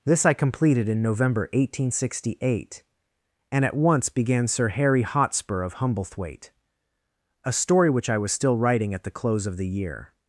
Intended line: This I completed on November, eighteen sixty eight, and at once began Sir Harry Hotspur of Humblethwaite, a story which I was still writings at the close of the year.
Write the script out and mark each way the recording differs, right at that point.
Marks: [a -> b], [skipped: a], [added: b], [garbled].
This I completed [on -> in] November, eighteen sixty eight, and at once began Sir Harry Hotspur of Humblethwaite, a story which I was still [writings -> writing] at the close of the year.